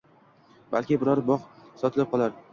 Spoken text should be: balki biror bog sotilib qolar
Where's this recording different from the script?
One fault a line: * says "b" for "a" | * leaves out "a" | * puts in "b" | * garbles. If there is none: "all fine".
all fine